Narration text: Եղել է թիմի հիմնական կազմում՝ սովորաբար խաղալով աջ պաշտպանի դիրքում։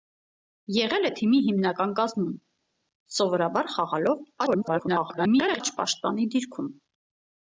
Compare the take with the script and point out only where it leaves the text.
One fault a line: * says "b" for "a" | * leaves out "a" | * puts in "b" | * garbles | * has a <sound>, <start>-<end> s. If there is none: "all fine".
* garbles